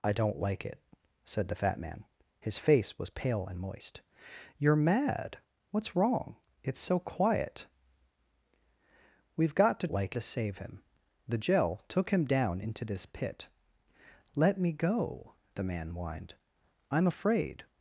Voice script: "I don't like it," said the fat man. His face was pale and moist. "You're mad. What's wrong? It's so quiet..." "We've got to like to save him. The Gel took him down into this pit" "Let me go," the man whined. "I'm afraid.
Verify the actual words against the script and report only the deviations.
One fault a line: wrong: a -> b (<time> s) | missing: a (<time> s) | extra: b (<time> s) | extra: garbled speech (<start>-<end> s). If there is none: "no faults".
no faults